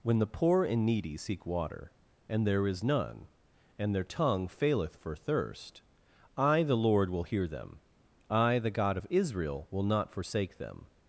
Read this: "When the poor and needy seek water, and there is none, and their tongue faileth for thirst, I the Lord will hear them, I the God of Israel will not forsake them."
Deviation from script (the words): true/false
false